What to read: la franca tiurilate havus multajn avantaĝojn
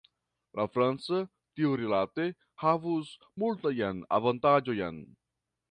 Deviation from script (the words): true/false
false